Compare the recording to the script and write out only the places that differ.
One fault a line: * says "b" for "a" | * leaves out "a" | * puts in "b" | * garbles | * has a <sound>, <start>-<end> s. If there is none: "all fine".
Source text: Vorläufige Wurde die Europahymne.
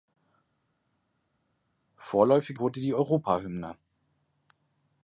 all fine